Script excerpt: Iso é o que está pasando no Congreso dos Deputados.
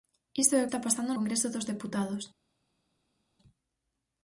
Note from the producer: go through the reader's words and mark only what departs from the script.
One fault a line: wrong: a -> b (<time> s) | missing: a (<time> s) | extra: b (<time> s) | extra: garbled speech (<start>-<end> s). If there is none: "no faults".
missing: que (0.7 s)
missing: no (1.1 s)